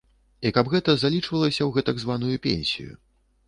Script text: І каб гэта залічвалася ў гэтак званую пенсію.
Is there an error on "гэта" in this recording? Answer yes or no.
no